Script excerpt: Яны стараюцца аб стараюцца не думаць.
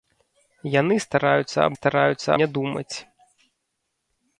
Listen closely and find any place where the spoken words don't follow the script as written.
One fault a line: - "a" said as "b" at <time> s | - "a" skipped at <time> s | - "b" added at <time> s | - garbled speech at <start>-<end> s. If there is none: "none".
none